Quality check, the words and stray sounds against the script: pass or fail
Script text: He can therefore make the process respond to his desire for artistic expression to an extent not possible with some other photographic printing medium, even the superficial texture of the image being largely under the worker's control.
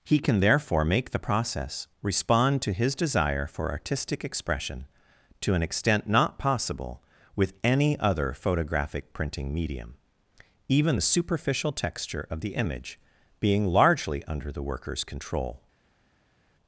fail